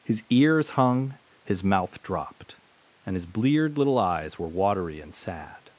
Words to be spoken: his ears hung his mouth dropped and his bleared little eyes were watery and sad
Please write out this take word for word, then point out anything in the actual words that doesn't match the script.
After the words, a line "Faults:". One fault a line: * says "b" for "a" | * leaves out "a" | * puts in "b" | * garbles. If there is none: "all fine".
his ears hung his mouth dropped and his bleared little eyes were watery and sad
Faults:
all fine